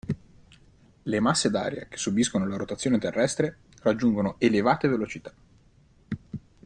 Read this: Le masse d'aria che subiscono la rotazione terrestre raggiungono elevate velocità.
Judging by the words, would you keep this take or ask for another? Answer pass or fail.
pass